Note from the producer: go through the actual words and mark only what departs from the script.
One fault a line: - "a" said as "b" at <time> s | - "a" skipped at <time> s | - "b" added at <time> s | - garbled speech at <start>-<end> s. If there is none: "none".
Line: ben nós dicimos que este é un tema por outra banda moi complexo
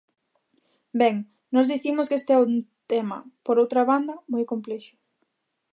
none